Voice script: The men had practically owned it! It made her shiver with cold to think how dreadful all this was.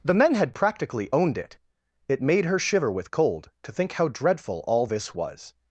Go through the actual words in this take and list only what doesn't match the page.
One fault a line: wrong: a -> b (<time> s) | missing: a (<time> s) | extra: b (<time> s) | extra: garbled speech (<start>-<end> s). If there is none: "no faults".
no faults